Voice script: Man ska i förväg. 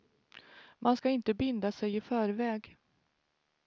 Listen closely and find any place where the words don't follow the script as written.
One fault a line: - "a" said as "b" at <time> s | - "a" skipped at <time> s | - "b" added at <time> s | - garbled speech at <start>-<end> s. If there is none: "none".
- "inte binda sig" added at 1.1 s